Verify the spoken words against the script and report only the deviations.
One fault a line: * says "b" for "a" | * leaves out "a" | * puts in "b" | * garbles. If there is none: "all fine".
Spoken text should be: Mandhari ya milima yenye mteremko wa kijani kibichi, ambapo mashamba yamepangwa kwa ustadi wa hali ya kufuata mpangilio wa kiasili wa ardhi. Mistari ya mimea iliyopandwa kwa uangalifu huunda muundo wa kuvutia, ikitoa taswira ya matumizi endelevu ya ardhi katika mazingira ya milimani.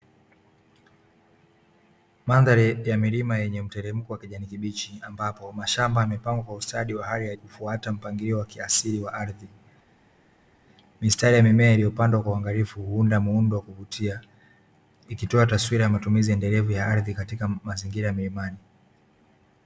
all fine